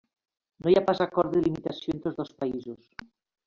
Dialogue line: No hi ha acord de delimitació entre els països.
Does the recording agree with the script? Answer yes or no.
no